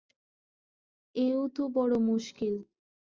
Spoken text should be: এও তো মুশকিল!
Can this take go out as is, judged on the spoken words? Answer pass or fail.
fail